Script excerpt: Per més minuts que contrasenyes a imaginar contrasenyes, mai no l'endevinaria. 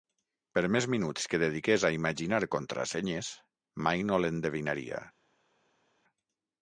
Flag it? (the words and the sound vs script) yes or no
yes